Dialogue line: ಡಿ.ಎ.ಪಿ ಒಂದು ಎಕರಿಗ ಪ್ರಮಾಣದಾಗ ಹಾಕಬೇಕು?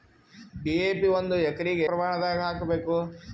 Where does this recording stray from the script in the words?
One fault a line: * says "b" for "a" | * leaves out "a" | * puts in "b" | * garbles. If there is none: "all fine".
all fine